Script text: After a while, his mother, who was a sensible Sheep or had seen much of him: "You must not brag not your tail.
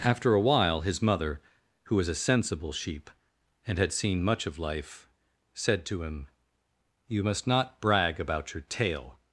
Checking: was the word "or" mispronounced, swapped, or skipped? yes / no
yes